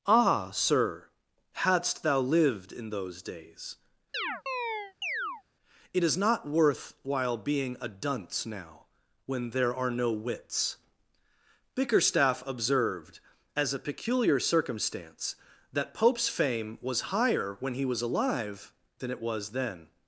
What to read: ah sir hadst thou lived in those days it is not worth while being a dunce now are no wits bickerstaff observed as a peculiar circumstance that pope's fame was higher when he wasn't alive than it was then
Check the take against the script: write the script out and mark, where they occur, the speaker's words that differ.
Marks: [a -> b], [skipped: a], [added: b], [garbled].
ah sir hadst thou lived in those days it is not worth while being a dunce now [added: when there] are no wits bickerstaff observed as a peculiar circumstance that pope's fame was higher when he [wasn't -> was] alive than it was then